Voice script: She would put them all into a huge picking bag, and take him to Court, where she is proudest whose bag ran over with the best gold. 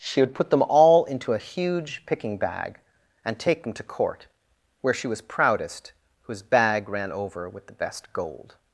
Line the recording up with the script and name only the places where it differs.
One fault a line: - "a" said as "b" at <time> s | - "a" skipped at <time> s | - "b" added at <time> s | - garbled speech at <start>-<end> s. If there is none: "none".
- "him" said as "them" at 3.6 s
- "is" said as "was" at 5.1 s